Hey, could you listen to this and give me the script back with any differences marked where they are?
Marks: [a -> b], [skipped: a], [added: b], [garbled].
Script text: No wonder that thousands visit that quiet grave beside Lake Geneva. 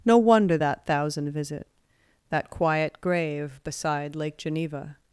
No wonder that [thousands -> thousand] visit that quiet grave beside Lake Geneva.